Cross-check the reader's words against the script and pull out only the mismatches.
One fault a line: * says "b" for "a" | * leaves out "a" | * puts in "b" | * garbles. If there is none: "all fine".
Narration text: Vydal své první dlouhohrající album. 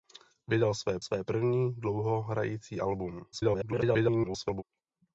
* puts in "své"
* garbles